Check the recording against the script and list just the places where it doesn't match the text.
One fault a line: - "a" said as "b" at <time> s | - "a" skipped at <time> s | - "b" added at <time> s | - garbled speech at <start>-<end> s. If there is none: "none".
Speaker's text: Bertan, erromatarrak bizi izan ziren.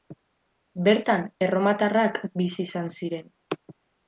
none